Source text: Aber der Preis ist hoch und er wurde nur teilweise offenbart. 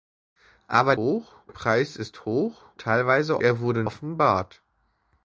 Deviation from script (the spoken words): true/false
true